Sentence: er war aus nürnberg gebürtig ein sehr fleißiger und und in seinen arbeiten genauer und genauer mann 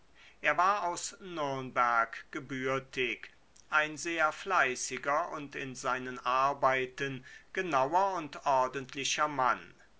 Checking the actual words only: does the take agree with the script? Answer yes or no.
no